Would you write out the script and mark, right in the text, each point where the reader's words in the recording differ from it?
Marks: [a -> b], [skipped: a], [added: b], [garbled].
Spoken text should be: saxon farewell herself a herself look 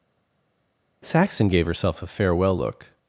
saxon [farewell -> gave] herself a [herself -> farewell] look